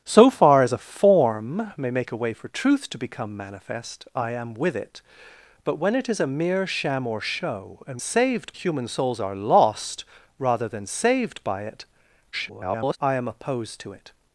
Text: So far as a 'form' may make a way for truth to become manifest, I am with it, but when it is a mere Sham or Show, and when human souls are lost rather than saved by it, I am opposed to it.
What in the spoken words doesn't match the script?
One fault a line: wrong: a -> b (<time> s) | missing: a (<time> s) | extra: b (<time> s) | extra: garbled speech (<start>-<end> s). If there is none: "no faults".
wrong: when -> saved (8.0 s)
extra: garbled speech (12.3-13.0 s)